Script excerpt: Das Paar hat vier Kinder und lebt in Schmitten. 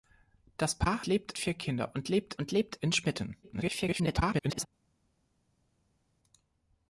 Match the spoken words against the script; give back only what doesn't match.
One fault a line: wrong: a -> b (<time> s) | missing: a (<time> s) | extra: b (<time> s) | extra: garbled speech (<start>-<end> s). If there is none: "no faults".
wrong: hat -> lebt (1.0 s)
extra: und lebt (2.4 s)
extra: garbled speech (3.4-4.7 s)